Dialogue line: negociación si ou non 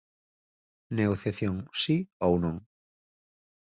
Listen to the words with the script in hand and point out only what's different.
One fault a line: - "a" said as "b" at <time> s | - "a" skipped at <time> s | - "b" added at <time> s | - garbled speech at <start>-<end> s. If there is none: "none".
none